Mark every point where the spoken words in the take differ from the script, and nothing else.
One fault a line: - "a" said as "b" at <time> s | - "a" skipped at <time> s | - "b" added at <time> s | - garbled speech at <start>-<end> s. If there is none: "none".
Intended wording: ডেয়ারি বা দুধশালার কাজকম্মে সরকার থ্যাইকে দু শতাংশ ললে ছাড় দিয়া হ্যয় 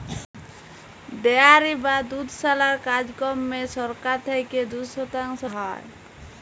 - "ললে ছাড় দিয়া" skipped at 5.4 s